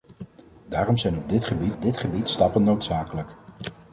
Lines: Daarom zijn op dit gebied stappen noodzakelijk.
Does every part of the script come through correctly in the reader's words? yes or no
no